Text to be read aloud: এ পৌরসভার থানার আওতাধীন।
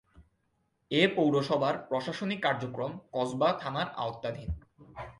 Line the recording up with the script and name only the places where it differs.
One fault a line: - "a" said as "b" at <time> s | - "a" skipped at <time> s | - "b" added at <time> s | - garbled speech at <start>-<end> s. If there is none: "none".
- "প্রশাসনিক কার্যক্রম কসবা" added at 1.9 s